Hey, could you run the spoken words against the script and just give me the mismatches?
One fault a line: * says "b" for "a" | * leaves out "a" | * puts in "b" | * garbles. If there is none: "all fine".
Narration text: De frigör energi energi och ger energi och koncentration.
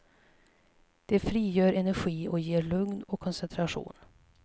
* leaves out "energi"
* says "lugn" for "energi"